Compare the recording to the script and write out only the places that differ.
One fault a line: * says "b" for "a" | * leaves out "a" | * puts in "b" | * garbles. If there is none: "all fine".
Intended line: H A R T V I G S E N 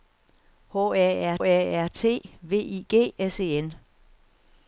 * puts in "A R"